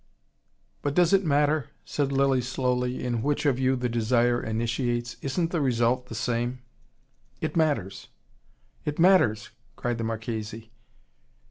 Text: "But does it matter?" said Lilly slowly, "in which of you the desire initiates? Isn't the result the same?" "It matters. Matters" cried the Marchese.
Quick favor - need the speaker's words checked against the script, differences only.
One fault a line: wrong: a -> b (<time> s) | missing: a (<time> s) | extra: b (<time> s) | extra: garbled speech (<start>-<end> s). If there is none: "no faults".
extra: It (8.8 s)